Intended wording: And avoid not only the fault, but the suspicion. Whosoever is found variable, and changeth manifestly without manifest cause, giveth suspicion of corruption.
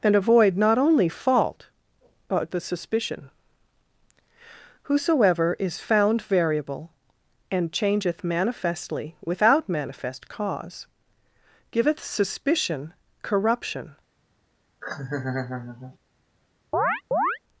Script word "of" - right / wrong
wrong